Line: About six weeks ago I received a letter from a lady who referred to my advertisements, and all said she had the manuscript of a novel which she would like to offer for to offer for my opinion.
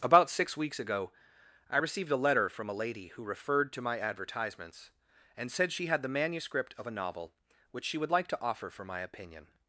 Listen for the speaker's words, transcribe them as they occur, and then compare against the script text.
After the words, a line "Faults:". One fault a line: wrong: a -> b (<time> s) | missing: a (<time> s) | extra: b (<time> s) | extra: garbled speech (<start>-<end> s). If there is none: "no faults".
About six weeks ago I received a letter from a lady who referred to my advertisements, and said she had the manuscript of a novel which she would like to offer for my opinion.
Faults:
missing: all (5.5 s)
missing: to offer for (8.9 s)